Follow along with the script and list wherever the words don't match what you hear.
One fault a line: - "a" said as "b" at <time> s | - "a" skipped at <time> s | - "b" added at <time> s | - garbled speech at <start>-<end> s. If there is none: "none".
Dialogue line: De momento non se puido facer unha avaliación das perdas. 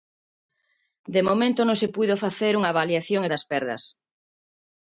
none